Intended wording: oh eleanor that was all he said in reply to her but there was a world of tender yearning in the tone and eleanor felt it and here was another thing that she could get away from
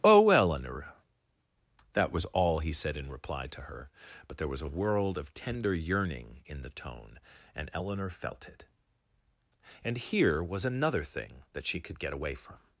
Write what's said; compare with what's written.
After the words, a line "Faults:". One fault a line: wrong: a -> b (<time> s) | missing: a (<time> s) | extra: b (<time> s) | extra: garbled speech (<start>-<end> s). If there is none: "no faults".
oh eleanor that was all he said in reply to her but there was a world of tender yearning in the tone and eleanor felt it and here was another thing that she could get away from
Faults:
no faults